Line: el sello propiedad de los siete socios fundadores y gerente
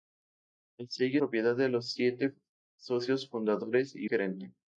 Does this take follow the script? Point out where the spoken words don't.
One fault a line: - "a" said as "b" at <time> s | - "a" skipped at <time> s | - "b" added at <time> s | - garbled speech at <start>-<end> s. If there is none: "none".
none